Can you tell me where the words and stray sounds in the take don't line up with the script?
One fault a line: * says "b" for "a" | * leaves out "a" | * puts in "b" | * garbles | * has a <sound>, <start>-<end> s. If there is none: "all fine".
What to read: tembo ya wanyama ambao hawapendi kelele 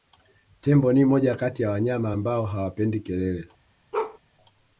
* puts in "ni moja kati"
* has a bark, 3.9-4.2 s